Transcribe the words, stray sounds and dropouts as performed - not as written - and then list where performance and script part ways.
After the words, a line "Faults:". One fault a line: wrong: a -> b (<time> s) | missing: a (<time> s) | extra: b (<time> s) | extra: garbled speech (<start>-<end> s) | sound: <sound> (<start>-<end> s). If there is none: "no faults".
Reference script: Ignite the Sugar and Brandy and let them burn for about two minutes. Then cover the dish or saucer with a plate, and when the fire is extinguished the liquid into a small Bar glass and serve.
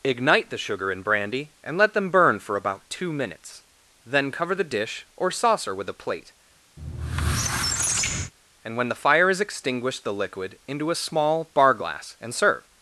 Ignite the Sugar and Brandy and let them burn for about two minutes. Then cover the dish or saucer with a plate, and when the fire is extinguished the liquid into a small Bar glass and serve.
Faults:
sound: squeak (6.8-8.3 s)